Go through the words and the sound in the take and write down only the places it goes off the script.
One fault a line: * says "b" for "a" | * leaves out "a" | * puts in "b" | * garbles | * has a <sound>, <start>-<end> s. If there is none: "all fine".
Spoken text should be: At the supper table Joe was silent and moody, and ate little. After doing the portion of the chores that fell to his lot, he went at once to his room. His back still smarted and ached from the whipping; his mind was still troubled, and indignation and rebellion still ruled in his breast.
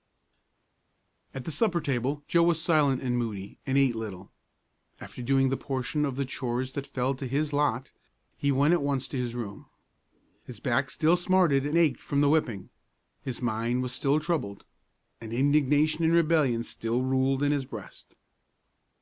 all fine